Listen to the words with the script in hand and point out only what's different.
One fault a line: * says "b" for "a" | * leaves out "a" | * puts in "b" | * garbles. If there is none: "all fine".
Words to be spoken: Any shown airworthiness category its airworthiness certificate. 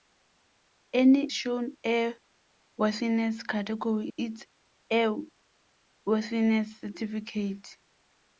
all fine